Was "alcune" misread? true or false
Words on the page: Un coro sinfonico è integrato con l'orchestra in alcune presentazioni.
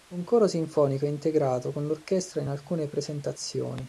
false